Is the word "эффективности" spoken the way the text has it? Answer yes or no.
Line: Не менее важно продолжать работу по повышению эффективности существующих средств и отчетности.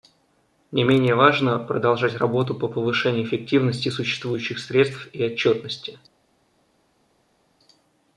yes